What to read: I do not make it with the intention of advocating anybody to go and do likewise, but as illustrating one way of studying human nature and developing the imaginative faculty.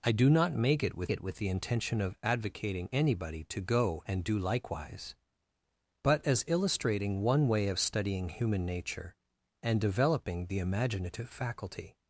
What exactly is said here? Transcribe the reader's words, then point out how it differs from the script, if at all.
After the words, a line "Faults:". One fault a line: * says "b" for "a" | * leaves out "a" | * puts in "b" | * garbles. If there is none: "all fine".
I do not make it with it with the intention of advocating anybody to go and do likewise, but as illustrating one way of studying human nature and developing the imaginative faculty.
Faults:
* puts in "it with"